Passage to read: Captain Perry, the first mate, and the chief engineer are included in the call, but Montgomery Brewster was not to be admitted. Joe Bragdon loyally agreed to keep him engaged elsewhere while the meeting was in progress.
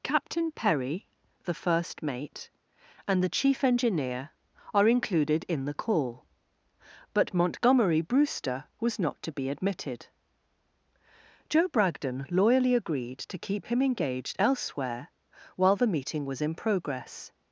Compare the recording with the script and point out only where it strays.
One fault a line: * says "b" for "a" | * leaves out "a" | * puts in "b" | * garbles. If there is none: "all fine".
all fine